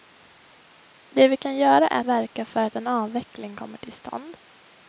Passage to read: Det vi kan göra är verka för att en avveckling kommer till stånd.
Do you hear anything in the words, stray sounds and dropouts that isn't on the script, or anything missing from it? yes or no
no